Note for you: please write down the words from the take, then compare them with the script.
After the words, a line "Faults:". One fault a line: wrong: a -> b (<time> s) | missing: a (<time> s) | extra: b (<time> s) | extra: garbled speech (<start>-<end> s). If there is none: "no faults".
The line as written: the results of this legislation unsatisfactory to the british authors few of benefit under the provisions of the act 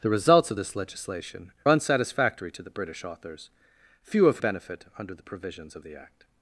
the results of this legislation unsatisfactory to the british authors few of benefit under the provisions of the act
Faults:
no faults